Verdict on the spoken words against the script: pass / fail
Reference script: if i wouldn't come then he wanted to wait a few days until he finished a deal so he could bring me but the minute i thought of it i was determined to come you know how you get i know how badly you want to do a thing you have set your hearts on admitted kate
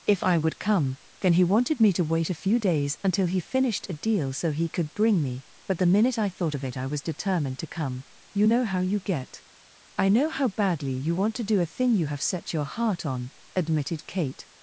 fail